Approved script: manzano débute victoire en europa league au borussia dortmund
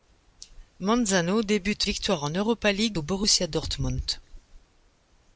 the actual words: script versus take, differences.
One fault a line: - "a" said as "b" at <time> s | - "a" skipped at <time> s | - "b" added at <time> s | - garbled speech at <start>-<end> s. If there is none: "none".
none